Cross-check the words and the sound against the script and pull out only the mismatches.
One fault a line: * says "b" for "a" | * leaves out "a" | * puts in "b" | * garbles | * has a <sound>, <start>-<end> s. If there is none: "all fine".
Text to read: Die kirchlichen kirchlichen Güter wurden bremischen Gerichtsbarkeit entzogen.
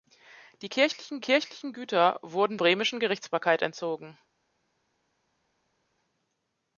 all fine